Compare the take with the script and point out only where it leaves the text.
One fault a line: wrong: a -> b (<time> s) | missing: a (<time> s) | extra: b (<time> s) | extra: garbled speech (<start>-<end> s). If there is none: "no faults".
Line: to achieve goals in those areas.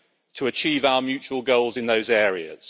extra: our mutual (0.8 s)